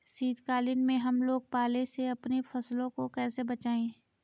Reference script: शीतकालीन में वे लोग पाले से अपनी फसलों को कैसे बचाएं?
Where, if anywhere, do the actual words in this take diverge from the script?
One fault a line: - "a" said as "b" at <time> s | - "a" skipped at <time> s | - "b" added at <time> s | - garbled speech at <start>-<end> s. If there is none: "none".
- "वे" said as "हम" at 1.0 s